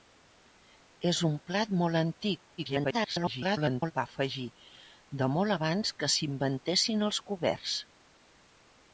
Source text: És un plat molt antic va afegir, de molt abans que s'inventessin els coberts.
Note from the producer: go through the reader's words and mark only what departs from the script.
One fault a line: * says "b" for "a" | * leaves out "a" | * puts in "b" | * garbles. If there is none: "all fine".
* garbles